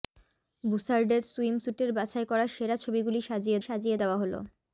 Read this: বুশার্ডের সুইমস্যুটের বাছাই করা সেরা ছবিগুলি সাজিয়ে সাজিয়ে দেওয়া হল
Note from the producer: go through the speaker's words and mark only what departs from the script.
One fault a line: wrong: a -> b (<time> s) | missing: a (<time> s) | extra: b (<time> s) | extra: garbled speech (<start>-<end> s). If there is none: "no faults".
no faults